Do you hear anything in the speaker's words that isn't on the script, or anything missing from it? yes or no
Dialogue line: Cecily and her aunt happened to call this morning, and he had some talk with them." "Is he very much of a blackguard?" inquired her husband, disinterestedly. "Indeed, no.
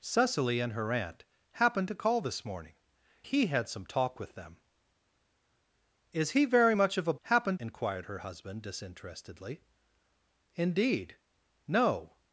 yes